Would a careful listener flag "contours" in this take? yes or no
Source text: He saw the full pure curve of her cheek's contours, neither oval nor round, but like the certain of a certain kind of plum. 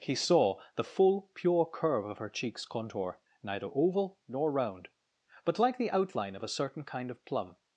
yes